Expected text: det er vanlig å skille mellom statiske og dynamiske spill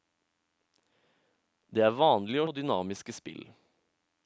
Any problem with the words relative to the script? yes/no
yes